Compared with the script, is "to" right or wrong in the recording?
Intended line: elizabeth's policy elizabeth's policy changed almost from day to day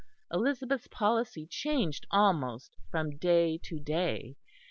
right